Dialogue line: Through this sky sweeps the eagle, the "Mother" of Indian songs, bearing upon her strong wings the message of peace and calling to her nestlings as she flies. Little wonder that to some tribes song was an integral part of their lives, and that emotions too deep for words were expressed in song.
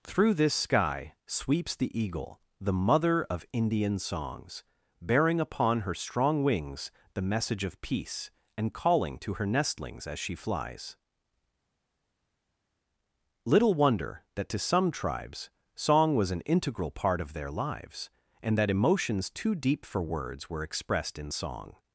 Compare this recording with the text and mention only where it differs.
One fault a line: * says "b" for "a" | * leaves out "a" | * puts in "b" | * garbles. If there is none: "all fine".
all fine